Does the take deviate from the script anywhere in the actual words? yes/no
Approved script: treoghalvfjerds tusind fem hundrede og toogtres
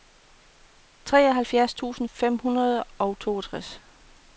no